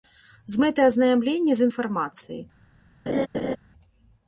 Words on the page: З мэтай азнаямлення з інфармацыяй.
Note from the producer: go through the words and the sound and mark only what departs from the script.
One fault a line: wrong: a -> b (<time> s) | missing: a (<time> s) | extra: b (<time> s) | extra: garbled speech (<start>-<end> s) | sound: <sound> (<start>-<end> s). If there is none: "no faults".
sound: laugh (3.1-3.6 s)